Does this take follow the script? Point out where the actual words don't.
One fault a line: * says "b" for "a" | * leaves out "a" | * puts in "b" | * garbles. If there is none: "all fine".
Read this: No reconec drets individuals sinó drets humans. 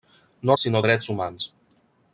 * leaves out "reconec drets individuals"